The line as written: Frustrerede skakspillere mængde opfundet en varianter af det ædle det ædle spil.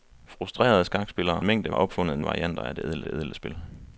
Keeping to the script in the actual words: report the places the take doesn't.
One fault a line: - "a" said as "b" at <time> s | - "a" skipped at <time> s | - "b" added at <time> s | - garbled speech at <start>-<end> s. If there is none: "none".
none